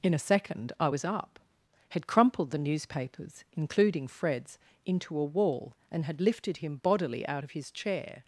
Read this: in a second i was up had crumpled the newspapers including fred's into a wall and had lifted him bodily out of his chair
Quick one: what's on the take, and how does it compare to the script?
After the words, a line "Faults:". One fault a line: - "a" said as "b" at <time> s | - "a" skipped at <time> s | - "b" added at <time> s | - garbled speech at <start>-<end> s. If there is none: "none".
in a second i was up had crumpled the newspapers including fred's into a wall and had lifted him bodily out of his chair
Faults:
none